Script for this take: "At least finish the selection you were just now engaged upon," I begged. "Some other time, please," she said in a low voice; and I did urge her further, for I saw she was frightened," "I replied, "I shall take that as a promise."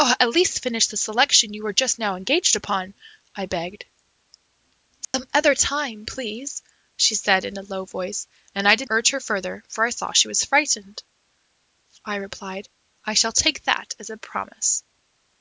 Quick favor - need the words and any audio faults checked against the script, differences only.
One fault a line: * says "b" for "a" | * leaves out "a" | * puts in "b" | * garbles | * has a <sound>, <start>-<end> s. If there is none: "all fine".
* has a dropout, 5.0-5.1 s